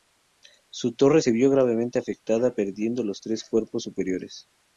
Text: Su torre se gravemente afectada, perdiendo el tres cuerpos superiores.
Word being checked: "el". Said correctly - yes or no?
no